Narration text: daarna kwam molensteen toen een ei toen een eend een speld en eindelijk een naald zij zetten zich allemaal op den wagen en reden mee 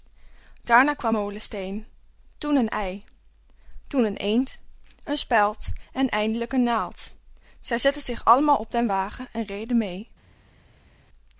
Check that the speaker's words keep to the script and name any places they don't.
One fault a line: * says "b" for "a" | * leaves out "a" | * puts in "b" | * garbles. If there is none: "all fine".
all fine